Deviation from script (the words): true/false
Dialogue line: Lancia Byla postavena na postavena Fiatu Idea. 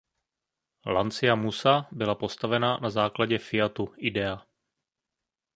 true